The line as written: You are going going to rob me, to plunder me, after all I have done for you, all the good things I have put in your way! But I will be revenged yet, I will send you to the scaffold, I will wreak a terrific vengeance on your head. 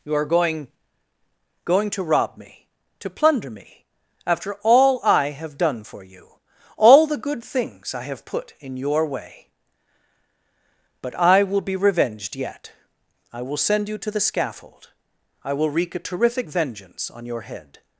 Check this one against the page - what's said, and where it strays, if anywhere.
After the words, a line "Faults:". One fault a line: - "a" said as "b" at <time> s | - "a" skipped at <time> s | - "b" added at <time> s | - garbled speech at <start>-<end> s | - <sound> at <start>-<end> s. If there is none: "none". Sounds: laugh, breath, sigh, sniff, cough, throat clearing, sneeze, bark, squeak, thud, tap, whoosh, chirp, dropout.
You are going going to rob me, to plunder me, after all I have done for you, all the good things I have put in your way! But I will be revenged yet, I will send you to the scaffold, I will wreak a terrific vengeance on your head.
Faults:
none